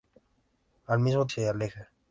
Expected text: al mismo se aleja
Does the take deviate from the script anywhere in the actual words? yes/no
no